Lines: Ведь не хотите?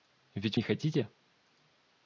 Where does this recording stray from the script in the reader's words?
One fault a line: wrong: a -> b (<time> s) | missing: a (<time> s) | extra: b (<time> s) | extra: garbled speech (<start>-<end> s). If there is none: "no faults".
no faults